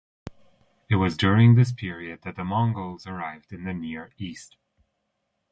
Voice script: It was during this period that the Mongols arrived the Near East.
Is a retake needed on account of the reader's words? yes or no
yes